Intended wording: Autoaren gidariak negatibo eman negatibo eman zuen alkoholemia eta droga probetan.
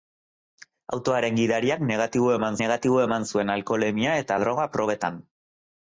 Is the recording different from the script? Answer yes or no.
no